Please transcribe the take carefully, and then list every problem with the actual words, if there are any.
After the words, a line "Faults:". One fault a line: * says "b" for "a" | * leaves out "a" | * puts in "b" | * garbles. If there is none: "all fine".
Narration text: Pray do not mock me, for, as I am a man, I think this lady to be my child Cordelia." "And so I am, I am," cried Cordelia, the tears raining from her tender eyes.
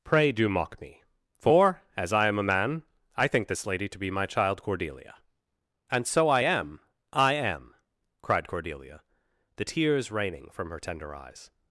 Pray do mock me, for, as I am a man, I think this lady to be my child Cordelia." "And so I am, I am," cried Cordelia, the tears raining from her tender eyes.
Faults:
* leaves out "not"